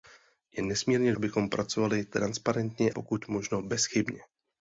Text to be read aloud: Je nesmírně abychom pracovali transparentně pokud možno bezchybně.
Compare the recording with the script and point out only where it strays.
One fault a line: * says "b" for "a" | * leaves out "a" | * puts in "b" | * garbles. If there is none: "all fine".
all fine